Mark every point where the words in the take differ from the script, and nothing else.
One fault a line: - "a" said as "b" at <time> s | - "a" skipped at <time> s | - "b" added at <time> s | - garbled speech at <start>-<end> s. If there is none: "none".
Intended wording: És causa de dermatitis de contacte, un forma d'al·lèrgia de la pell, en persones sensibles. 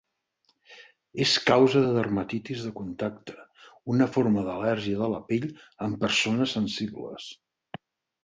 - "un" said as "una" at 4.0 s